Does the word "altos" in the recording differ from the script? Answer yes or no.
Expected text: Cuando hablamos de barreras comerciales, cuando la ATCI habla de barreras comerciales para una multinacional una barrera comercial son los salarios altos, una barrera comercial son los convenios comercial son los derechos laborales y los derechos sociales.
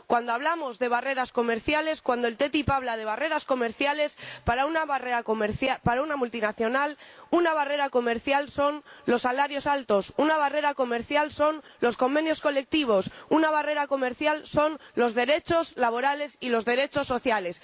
no